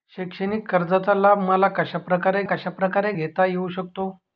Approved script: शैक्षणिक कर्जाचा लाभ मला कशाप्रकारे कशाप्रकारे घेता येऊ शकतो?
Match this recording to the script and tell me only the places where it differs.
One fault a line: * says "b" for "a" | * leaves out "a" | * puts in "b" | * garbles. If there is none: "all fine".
all fine